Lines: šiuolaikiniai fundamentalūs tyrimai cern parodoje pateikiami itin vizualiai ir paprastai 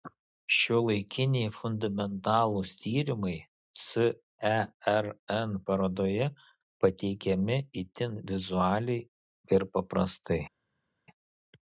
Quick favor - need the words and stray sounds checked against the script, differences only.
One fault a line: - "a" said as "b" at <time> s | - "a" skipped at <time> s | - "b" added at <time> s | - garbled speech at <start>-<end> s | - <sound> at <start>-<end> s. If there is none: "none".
none